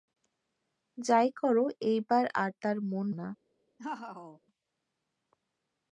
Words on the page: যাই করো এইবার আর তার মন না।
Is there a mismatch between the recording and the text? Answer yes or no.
no